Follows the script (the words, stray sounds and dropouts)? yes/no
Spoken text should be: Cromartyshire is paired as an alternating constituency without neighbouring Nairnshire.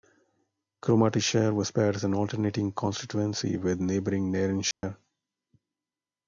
no